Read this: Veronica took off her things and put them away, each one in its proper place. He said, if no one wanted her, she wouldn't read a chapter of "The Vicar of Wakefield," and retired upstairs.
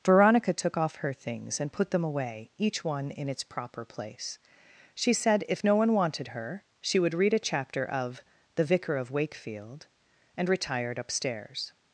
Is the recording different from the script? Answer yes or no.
yes